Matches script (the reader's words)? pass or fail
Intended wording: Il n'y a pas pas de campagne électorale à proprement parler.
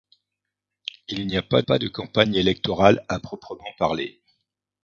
pass